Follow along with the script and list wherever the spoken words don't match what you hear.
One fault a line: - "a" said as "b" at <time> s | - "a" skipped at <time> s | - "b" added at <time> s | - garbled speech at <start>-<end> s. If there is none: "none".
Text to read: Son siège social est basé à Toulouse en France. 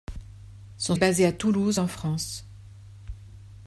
- "siège social" skipped at 0.9 s